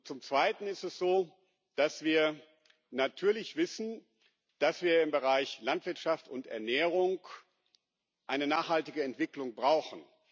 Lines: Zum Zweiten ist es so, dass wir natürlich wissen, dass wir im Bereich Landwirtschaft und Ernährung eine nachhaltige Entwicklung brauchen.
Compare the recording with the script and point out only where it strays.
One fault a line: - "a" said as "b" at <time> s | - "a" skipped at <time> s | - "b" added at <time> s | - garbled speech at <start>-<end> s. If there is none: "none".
none